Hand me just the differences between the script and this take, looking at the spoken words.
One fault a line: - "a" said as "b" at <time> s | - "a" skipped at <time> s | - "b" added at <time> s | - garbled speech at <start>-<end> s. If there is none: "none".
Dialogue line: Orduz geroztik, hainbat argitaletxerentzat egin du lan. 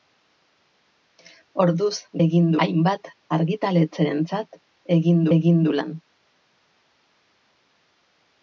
- "geroztik" said as "egin" at 2.3 s
- "egin" added at 5.4 s